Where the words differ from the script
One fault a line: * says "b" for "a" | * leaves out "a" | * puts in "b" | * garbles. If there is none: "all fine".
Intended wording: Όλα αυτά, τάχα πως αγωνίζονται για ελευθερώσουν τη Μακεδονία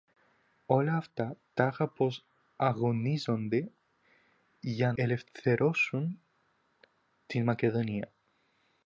all fine